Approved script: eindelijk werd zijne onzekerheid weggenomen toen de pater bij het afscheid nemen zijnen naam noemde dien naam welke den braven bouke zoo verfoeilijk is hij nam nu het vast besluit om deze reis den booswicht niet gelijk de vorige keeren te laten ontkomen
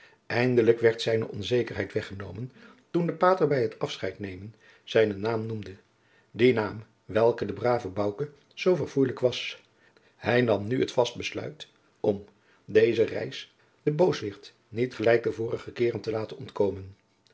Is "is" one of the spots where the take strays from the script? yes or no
yes